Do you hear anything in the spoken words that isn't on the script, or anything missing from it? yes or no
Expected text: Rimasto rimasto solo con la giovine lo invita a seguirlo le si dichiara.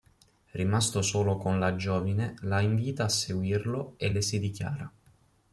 yes